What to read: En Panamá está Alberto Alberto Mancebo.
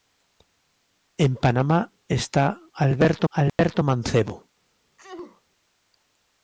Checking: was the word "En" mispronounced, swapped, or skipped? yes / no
no